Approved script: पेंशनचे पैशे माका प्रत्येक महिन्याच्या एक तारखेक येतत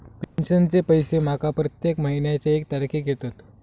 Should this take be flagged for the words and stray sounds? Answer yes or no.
yes